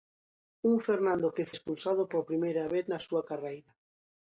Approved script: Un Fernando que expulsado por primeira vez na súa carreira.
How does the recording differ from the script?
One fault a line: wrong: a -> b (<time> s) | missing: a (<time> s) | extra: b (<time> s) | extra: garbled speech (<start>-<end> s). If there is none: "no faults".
no faults